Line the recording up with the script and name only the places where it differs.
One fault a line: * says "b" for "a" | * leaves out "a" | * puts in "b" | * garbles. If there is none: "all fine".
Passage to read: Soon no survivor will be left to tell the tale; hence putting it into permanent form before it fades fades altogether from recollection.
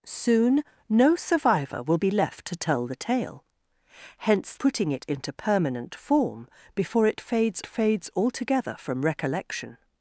all fine